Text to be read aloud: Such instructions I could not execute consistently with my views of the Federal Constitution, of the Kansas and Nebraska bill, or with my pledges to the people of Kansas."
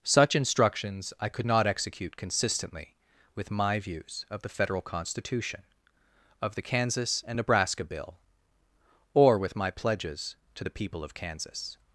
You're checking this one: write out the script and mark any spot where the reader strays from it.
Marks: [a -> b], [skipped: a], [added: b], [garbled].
Such instructions I could not execute consistently with my views of the Federal Constitution, of the Kansas and Nebraska bill, or with my pledges to the people of Kansas."